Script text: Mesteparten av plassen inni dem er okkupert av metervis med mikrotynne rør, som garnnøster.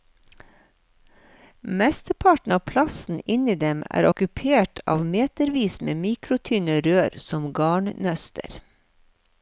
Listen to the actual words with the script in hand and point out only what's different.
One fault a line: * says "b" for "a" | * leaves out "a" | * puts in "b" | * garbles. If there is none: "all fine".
all fine